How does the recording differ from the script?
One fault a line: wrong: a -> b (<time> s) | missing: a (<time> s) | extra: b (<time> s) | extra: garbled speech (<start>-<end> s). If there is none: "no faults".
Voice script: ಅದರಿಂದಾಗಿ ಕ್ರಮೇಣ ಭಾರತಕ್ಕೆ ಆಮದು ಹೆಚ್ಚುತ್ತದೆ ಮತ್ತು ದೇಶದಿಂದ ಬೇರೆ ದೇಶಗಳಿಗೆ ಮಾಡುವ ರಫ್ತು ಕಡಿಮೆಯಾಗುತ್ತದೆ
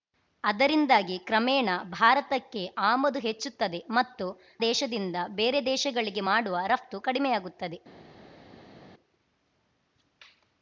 no faults